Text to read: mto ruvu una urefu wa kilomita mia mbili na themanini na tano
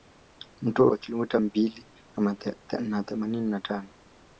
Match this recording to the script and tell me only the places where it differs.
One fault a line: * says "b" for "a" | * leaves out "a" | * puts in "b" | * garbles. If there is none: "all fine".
* leaves out "ruvu una urefu"
* leaves out "mia"